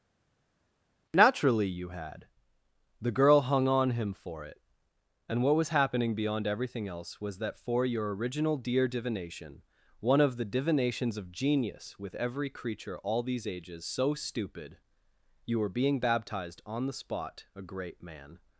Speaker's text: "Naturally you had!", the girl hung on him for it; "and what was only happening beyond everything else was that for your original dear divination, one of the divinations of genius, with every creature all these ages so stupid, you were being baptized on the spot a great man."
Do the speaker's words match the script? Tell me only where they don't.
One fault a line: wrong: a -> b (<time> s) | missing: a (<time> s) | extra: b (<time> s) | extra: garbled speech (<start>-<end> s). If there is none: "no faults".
missing: only (5.7 s)